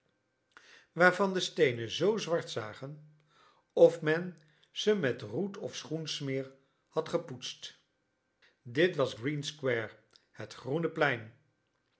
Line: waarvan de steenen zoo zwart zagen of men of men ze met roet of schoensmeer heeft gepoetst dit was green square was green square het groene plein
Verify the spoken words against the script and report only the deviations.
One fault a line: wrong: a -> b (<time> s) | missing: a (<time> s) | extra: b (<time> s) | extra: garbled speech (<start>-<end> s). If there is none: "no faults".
missing: of men (4.4 s)
wrong: heeft -> had (6.9 s)
missing: was green square (9.9 s)